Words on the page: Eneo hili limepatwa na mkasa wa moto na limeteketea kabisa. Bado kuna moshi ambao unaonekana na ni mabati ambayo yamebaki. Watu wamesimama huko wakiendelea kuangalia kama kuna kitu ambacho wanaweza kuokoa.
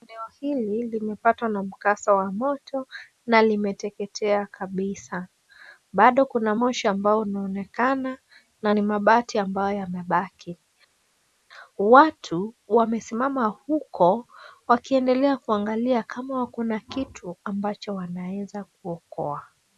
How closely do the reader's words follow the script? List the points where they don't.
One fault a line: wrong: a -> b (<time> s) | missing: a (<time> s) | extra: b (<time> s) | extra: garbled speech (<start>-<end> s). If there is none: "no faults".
no faults